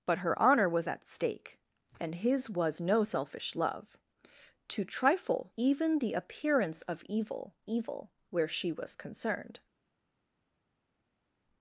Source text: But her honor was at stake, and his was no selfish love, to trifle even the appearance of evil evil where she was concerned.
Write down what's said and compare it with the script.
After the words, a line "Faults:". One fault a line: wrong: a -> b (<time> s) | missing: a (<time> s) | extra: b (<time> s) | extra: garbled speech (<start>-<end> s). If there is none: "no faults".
But her honor was at stake, and his was no selfish love, to trifle even the appearance of evil evil where she was concerned.
Faults:
no faults